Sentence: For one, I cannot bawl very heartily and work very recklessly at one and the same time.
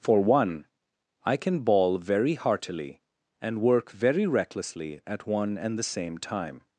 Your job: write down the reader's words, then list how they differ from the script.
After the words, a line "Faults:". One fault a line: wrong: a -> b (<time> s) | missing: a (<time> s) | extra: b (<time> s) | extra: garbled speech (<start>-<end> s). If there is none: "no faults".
For one, I can bawl very heartily and work very recklessly at one and the same time.
Faults:
wrong: cannot -> can (1.4 s)